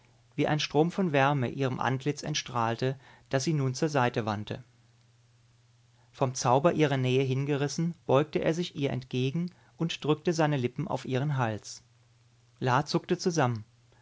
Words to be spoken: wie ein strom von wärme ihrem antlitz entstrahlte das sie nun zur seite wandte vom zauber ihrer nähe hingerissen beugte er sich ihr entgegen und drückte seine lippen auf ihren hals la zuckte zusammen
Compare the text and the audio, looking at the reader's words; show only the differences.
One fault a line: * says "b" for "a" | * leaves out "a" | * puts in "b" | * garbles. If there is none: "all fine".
all fine